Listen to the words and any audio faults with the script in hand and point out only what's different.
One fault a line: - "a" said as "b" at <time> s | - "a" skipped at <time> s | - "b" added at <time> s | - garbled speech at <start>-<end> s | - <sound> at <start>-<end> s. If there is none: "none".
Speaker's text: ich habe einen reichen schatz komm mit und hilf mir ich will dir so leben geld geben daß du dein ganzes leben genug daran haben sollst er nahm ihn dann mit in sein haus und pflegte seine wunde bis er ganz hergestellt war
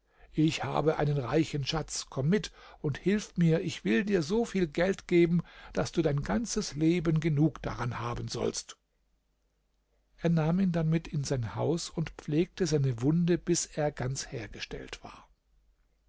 - "leben" said as "viel" at 4.5 s